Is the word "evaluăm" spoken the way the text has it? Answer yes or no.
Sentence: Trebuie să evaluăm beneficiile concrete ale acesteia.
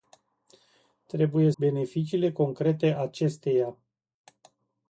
no